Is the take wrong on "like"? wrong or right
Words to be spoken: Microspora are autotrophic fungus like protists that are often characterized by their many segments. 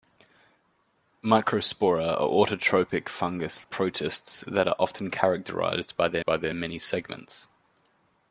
wrong